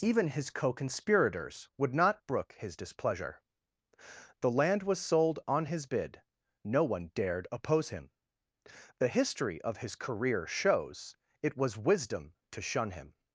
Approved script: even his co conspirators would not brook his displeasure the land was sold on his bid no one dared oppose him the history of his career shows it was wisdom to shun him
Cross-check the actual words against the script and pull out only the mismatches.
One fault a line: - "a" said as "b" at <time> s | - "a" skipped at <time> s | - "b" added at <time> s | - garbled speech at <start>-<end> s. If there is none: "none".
none